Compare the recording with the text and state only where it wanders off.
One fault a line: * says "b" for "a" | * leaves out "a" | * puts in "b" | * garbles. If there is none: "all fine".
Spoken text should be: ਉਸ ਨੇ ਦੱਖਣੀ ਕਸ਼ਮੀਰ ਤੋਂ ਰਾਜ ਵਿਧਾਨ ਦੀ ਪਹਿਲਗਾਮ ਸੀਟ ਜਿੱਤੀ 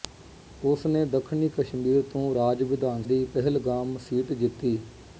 all fine